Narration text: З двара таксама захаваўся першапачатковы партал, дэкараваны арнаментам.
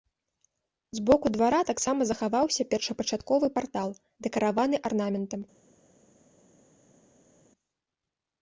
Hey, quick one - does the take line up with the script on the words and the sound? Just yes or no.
no